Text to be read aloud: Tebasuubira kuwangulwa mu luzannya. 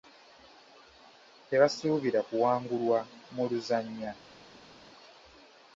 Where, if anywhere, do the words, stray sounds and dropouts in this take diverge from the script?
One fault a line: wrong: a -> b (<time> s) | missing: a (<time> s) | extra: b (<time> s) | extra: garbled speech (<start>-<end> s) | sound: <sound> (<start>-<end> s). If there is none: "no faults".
no faults